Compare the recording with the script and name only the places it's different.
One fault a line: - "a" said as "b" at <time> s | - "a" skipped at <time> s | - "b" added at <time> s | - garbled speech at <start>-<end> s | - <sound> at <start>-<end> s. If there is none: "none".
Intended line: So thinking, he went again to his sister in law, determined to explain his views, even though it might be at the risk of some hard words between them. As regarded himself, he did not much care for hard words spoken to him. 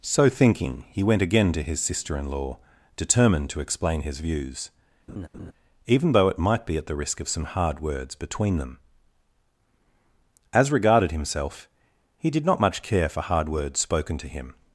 - laugh at 5.1-5.5 s